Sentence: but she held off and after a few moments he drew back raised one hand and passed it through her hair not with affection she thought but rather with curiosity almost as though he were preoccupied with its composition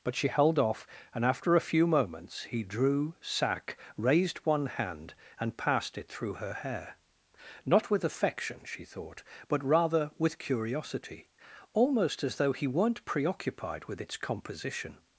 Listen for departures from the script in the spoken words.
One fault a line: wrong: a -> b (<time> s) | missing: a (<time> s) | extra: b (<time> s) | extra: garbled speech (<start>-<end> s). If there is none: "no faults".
wrong: back -> sack (3.2 s)
wrong: were -> weren't (12.7 s)